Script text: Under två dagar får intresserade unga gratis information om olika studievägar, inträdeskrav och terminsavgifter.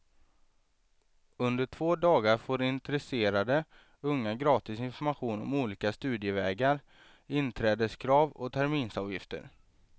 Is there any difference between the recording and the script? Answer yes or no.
no